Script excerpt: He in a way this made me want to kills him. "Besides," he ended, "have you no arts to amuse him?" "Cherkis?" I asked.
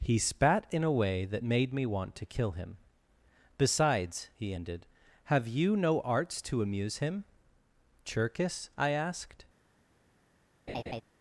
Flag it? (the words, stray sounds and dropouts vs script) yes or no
yes